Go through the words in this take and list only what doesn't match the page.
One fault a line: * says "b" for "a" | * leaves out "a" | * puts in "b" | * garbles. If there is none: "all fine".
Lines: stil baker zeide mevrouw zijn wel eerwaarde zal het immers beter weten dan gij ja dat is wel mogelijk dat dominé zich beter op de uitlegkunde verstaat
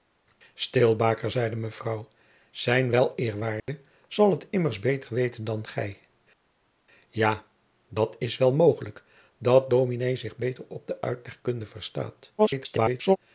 * garbles